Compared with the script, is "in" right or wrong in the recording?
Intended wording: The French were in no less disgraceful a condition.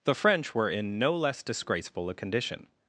right